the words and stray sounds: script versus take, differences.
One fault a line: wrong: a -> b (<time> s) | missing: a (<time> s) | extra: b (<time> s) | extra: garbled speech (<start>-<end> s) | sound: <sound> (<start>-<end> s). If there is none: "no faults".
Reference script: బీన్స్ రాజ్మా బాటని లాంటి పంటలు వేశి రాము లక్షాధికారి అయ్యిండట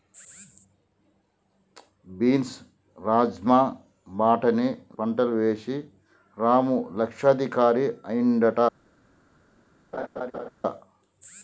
missing: లాంటి (4.7 s)
sound: laugh (9.9-10.5 s)